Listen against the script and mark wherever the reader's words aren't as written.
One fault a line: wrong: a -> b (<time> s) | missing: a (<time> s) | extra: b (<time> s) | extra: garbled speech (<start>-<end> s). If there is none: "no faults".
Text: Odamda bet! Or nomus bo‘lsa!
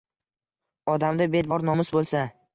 no faults